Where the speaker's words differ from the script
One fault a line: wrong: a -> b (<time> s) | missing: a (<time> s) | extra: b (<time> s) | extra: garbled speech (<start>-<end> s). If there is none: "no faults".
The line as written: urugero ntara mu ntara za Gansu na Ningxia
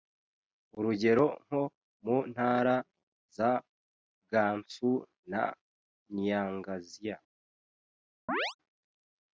wrong: ntara -> nko (1.4 s)